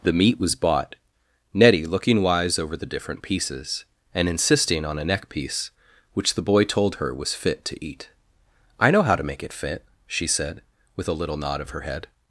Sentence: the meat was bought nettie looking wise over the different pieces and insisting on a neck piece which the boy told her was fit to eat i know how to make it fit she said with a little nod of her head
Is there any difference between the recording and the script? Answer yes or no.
no